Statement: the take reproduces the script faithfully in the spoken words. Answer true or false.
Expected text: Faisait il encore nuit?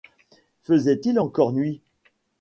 true